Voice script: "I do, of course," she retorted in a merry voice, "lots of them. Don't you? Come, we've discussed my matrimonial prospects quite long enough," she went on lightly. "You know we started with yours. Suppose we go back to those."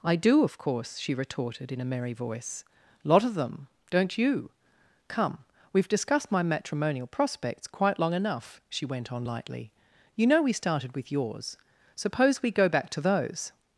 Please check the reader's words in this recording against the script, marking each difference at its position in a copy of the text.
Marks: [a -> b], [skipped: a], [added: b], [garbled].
"I do, of course," she retorted in a merry voice, ["lots -> lot] of them. Don't you? Come, we've discussed my matrimonial prospects quite long enough," she went on lightly. "You know we started with yours. Suppose we go back to those."